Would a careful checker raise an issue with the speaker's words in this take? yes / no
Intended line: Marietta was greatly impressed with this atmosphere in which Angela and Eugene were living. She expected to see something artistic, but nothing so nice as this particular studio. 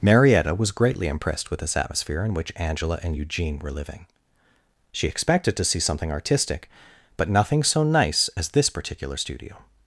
no